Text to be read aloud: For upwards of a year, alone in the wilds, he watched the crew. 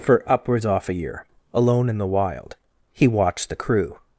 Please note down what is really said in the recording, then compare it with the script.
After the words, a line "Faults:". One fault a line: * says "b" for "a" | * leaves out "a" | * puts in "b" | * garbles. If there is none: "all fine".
For upwards off a year, alone in the wild, he watched the crew.
Faults:
* says "off" for "of"
* says "wild" for "wilds"